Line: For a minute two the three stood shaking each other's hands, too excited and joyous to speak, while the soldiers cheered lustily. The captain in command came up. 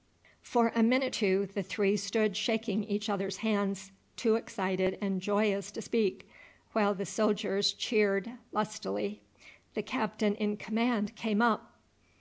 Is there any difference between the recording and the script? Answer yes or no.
no